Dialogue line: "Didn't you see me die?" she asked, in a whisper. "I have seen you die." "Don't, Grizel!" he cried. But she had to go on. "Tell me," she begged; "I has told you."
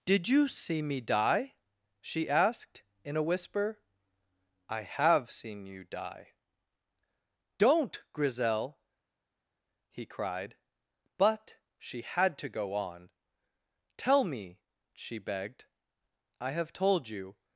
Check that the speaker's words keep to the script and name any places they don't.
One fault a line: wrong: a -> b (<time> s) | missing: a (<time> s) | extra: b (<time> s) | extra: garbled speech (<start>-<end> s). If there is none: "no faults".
wrong: Didn't -> Did (0.1 s)
wrong: has -> have (16.5 s)